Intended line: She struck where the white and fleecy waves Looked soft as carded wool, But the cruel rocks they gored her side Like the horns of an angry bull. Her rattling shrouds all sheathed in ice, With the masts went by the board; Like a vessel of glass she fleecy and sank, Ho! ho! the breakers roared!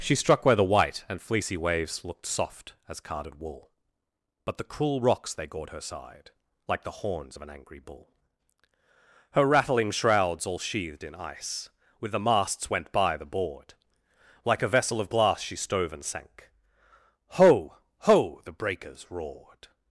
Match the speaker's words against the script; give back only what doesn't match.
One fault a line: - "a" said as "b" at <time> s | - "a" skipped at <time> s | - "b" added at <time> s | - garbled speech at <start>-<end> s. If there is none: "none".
- "fleecy" said as "stove" at 15.6 s